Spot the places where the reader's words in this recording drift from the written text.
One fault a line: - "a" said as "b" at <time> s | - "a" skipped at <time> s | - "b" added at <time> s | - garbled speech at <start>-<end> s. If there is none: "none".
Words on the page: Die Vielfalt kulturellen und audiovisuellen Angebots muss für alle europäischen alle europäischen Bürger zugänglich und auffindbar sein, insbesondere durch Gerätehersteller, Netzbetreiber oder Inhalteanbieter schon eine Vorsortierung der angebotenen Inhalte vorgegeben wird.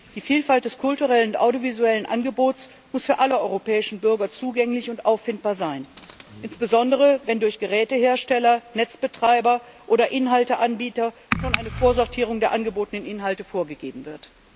- "des" added at 0.7 s
- "alle europäischen" skipped at 4.0 s
- "wenn" added at 7.2 s